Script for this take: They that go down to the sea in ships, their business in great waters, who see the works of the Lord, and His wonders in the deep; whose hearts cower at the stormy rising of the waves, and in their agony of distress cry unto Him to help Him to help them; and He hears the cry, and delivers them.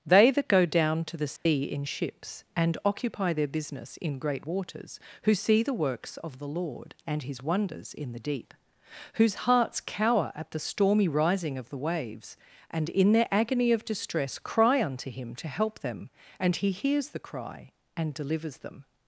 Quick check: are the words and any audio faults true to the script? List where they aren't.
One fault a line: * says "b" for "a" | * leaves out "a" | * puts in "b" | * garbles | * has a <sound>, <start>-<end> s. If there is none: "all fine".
* has a dropout, 1.4-1.5 s
* puts in "and occupy"
* leaves out "Him to help"